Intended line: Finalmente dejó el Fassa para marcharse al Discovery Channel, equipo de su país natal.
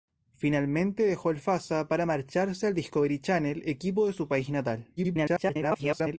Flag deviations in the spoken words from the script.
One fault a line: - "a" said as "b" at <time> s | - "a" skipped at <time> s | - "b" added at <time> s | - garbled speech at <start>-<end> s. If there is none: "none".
- garbled speech at 5.0-6.2 s